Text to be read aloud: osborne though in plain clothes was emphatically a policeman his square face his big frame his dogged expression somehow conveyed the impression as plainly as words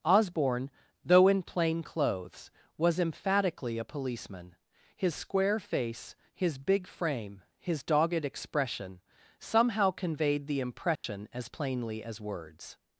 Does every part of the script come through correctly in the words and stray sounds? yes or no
no